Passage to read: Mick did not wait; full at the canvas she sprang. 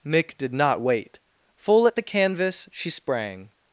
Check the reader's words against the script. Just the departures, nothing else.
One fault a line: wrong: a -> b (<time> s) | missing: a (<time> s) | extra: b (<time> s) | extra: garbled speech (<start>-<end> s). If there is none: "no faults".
no faults